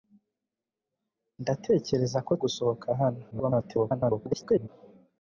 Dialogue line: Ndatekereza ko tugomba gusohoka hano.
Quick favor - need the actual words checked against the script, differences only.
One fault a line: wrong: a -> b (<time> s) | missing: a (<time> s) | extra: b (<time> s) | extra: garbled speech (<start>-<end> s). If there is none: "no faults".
missing: tugomba (2.3 s)
extra: garbled speech (3.3-4.7 s)